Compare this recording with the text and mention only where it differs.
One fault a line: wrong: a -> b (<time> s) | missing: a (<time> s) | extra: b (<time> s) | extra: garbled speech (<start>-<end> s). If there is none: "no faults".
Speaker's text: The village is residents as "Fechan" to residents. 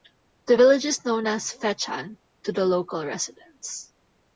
wrong: residents -> known (1.0 s)
extra: the local (2.5 s)